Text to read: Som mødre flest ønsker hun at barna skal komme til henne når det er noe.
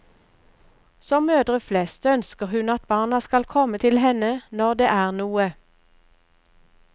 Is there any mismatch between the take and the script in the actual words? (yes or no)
no